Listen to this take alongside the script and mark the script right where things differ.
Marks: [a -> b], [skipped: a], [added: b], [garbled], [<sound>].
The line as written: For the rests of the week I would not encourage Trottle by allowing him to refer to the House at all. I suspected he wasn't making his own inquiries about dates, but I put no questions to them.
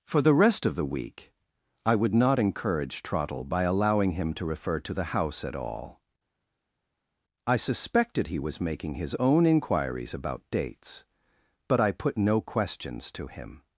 For the [rests -> rest] of the week I would not encourage Trottle by allowing him to refer to the House at all. I suspected he [wasn't -> was] making his own inquiries about dates, but I put no questions to [them. -> him]